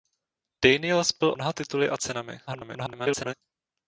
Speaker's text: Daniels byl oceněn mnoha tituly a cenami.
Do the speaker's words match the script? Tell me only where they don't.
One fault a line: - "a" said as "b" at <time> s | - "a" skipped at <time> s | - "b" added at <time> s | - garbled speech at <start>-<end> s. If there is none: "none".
- "oceněn" skipped at 1.3 s
- garbled speech at 2.5-3.3 s